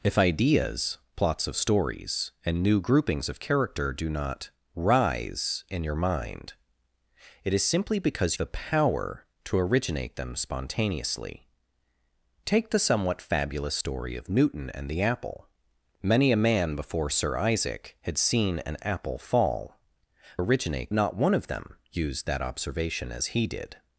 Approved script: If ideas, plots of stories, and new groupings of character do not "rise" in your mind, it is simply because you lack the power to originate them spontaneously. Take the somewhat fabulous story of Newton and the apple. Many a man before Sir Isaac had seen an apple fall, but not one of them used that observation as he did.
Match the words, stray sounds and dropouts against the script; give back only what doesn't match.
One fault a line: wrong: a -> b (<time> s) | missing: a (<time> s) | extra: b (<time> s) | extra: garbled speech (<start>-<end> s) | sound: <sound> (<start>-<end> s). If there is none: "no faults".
missing: you lack (8.3 s)
wrong: but -> originate (20.4 s)